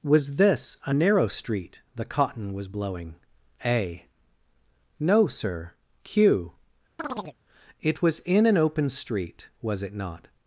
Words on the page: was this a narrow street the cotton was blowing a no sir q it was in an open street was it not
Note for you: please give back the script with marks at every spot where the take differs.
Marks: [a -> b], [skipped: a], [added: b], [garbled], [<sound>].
was this a narrow street the cotton was blowing a no sir q [chirp] it was in an open street was it not